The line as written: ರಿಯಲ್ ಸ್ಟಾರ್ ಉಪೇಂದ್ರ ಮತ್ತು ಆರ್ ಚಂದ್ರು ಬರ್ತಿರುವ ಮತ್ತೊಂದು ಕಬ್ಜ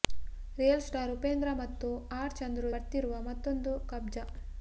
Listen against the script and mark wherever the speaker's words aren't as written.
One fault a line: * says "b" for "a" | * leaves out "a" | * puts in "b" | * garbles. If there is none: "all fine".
all fine